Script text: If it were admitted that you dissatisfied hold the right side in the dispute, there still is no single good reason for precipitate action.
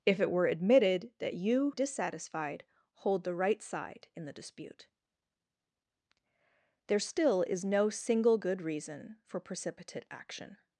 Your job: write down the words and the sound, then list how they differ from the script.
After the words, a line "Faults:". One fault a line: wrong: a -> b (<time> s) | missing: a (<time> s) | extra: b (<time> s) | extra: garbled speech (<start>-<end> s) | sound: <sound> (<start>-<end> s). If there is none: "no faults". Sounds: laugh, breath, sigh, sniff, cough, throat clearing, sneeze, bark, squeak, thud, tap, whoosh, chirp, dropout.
If it were admitted that you dissatisfied hold the right side in the dispute, there still is no single good reason for precipitate action.
Faults:
no faults